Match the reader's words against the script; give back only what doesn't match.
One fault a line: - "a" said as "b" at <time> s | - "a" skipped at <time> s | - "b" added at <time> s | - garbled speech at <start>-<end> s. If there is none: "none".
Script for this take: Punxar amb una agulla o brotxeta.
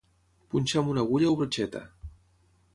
none